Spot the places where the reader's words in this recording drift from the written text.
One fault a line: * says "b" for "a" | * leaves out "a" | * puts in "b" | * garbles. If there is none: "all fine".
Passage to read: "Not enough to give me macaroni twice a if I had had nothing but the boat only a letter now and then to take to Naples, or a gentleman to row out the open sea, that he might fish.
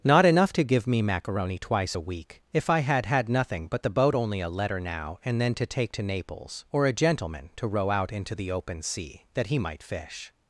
* puts in "week"
* puts in "into"